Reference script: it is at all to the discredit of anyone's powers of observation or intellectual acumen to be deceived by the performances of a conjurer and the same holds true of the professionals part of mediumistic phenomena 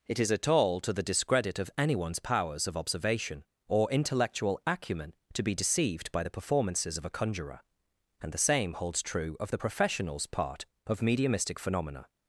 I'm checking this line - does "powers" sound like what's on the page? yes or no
yes